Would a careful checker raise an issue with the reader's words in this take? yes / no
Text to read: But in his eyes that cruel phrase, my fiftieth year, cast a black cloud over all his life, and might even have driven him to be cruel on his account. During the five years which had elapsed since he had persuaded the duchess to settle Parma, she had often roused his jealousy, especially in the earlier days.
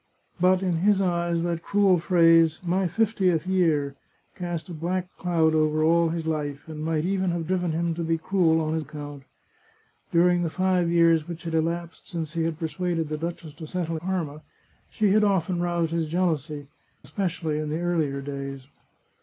no